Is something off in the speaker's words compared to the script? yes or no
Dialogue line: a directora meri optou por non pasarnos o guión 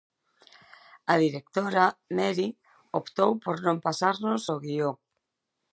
no